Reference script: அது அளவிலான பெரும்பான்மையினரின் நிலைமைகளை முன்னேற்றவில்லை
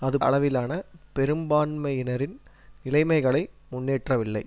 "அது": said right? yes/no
yes